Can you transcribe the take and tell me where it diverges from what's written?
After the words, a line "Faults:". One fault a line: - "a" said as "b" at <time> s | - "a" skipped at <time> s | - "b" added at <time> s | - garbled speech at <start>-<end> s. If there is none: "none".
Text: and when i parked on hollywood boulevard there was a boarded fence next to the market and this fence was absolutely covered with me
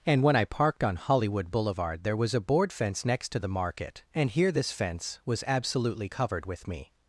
and when i parked on hollywood boulevard there was a board fence next to the market and here this fence was absolutely covered with me
Faults:
- "boarded" said as "board" at 2.4 s
- "here" added at 4.3 s